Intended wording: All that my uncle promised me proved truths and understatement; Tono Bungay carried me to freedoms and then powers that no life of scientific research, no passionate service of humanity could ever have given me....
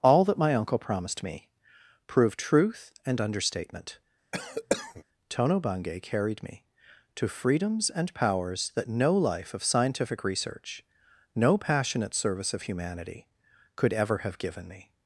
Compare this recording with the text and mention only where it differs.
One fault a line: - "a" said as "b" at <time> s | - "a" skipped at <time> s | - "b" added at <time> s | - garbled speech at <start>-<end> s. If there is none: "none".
- "truths" said as "truth" at 2.4 s
- "then" skipped at 8.1 s